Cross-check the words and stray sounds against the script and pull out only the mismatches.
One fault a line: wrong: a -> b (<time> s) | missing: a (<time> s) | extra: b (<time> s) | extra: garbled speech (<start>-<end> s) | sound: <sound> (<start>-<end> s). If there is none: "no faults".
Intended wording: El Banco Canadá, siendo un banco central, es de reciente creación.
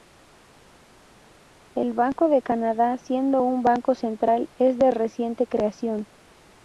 extra: de (2.3 s)